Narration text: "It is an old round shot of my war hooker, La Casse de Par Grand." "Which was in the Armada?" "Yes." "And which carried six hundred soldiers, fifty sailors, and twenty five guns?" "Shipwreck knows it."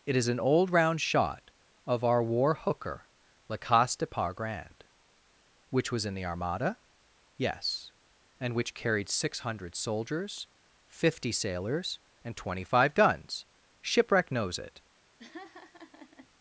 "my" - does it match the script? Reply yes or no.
no